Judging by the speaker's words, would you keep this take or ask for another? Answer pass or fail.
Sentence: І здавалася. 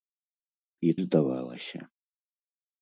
pass